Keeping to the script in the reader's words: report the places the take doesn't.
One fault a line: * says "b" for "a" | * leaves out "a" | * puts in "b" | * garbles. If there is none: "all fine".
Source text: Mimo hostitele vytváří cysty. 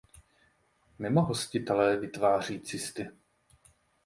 all fine